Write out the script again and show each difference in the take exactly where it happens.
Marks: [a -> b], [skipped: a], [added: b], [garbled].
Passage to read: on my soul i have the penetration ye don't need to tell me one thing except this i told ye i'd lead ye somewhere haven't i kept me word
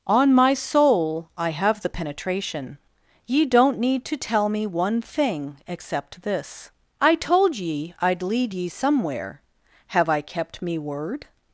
on my soul i have the penetration ye don't need to tell me one thing except this i told ye i'd lead ye somewhere [haven't -> have] i kept me word